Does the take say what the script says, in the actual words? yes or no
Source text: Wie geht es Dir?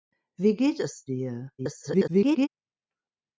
no